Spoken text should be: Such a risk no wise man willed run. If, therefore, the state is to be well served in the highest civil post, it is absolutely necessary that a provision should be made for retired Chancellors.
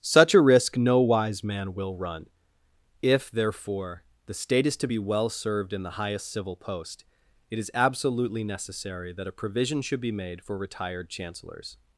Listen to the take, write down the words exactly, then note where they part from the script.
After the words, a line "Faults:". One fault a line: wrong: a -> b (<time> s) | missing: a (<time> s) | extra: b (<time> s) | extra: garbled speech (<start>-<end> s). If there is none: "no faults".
Such a risk no wise man will run. If, therefore, the state is to be well served in the highest civil post, it is absolutely necessary that a provision should be made for retired Chancellors.
Faults:
wrong: willed -> will (1.8 s)